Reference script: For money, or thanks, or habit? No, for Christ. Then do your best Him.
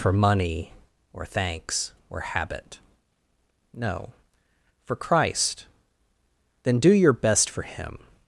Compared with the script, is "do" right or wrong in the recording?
right